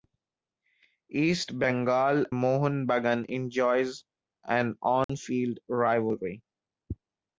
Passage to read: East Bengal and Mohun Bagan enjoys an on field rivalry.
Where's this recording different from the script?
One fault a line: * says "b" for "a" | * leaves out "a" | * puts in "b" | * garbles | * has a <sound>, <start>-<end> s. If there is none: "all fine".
* leaves out "and"
* has a dropout, 5.0-5.1 s